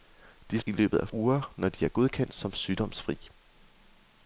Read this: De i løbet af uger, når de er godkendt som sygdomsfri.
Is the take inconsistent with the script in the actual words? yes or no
no